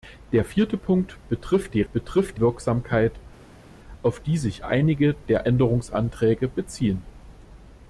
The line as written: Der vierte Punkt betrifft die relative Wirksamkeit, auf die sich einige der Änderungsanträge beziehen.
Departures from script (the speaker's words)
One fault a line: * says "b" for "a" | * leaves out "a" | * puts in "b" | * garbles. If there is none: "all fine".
* says "betrifft" for "relative"